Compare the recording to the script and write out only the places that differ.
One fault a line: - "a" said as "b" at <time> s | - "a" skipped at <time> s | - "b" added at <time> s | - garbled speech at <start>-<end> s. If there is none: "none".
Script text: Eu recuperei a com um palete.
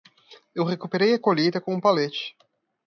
- "colheita" added at 1.2 s